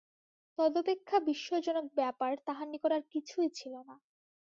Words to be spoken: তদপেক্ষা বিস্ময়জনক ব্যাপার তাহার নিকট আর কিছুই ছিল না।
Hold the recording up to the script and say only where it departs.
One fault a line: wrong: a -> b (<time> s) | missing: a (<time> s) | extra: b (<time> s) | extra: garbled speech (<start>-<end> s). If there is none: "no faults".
no faults